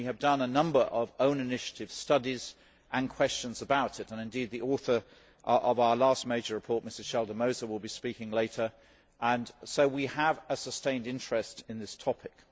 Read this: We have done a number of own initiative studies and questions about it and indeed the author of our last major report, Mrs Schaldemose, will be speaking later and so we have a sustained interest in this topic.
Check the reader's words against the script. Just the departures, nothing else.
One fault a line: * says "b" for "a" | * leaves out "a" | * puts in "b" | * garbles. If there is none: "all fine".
all fine